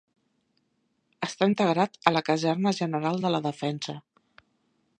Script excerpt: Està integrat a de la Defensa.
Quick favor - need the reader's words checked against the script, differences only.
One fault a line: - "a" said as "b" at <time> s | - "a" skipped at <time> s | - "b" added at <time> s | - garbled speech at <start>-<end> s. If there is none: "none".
- "la Caserna General" added at 2.1 s